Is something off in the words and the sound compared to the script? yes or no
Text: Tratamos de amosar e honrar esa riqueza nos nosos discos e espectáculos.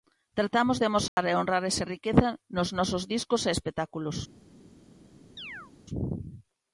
yes